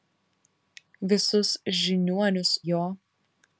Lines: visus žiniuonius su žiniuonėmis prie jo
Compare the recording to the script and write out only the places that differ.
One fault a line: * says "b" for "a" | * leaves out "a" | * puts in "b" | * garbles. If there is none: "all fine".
* leaves out "su žiniuonėmis prie"